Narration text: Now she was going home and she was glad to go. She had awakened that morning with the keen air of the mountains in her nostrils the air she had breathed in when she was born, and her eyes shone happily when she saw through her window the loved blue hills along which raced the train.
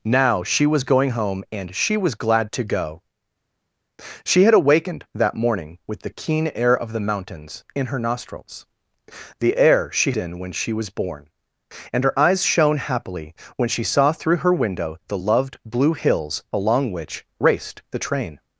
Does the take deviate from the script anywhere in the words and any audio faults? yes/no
yes